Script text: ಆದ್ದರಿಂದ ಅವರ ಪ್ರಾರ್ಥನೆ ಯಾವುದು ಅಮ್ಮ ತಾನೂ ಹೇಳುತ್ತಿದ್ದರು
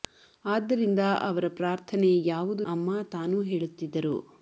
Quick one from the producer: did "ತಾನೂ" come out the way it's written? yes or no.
yes